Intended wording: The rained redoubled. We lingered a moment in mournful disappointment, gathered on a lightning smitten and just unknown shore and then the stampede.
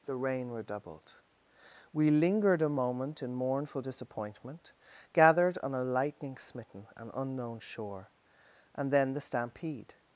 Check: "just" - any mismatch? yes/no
yes